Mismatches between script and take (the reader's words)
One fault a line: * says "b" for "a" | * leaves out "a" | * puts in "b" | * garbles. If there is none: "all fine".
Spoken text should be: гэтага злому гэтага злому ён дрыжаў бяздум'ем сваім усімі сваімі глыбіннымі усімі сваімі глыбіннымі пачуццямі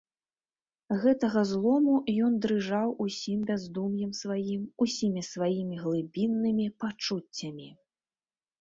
* leaves out "гэтага злому"
* puts in "усім"
* leaves out "усімі сваімі глыбіннымі"